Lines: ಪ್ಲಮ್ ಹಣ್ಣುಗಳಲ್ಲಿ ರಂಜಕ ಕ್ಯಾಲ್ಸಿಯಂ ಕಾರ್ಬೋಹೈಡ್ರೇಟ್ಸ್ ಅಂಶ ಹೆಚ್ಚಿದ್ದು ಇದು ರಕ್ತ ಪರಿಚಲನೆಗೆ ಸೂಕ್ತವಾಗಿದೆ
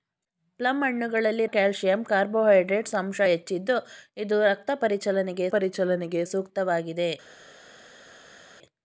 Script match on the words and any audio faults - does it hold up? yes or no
no